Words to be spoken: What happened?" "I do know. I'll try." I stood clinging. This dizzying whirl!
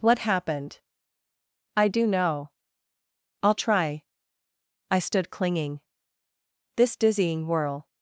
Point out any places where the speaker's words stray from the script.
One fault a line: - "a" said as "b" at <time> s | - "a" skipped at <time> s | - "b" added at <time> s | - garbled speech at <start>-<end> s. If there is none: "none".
none